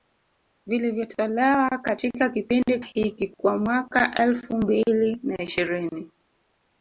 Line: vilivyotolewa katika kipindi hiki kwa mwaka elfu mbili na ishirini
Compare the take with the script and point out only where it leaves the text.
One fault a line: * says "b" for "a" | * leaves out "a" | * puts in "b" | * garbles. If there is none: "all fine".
all fine